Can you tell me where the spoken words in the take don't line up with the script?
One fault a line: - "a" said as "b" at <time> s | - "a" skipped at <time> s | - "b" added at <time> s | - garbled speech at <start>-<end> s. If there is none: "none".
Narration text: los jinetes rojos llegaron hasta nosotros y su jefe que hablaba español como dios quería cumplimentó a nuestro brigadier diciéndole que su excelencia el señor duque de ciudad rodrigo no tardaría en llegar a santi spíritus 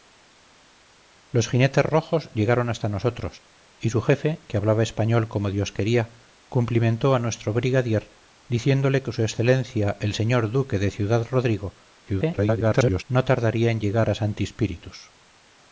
- garbled speech at 12.1-13.0 s